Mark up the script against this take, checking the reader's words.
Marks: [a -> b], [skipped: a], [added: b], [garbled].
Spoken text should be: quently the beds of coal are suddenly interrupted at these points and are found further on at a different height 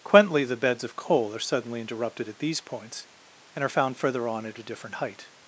quently the beds of coal are suddenly interrupted at these points and are found further on at a different height